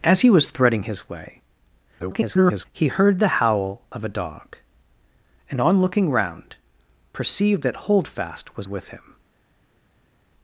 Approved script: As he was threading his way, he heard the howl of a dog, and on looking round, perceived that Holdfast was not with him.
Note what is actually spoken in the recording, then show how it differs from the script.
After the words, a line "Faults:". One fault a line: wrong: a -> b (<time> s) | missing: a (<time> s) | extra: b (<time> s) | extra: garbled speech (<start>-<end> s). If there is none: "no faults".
As he was threading his way, [garbled] he heard the howl of a dog, and on looking round, perceived that Holdfast was with him.
Faults:
extra: garbled speech (2.0-2.7 s)
missing: not (8.7 s)